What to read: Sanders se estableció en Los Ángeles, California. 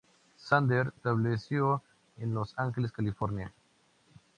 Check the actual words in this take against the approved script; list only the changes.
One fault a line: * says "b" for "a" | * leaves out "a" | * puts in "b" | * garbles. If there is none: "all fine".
* leaves out "se"